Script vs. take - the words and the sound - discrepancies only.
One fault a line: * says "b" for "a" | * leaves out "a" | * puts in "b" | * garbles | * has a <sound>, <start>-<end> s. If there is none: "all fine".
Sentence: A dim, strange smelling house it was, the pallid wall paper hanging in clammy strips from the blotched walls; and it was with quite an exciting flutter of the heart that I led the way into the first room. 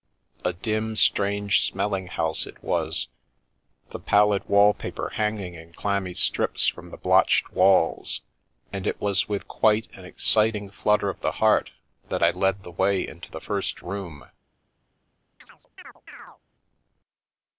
* has a chirp, 15.4-16.4 s